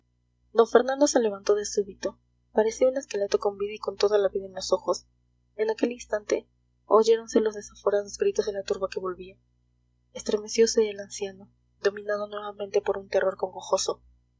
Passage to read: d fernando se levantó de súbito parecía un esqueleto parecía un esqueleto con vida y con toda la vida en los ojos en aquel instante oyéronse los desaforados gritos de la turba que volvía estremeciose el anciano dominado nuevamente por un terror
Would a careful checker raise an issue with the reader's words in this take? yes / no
yes